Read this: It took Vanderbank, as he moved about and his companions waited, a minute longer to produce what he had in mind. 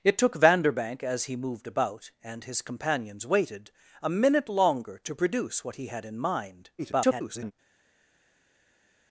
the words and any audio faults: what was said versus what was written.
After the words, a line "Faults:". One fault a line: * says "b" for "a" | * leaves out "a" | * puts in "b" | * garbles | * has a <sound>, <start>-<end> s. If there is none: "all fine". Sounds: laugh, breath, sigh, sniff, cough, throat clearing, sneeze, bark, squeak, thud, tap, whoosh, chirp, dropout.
It took Vanderbank, as he moved about and his companions waited, a minute longer to produce what he had in mind. [garbled]
Faults:
* garbles